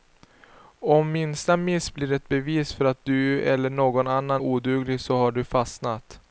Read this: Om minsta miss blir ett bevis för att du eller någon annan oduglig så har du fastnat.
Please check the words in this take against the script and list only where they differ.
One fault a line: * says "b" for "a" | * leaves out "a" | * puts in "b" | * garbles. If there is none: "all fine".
all fine